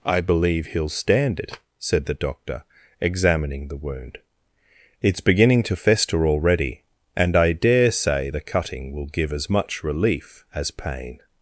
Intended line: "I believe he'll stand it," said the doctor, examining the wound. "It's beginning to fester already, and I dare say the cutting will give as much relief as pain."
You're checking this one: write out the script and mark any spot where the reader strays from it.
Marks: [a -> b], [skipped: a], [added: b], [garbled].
"I believe he'll stand it," said the doctor, examining the wound. "It's beginning to fester already, and I dare say the cutting will give as much relief as pain."